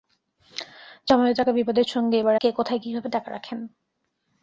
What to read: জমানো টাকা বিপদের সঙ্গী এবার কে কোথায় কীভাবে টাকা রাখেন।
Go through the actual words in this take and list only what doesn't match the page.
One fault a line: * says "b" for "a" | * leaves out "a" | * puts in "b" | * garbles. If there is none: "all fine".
all fine